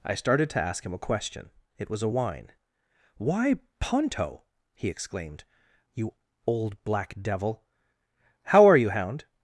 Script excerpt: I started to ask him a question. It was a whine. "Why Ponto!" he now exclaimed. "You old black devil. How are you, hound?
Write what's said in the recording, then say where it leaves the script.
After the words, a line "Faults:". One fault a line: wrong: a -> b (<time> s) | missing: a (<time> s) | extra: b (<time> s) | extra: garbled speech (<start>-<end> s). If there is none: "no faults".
I started to ask him a question. It was a whine. "Why Ponto!" he exclaimed. "You old black devil. How are you, hound?
Faults:
missing: now (4.9 s)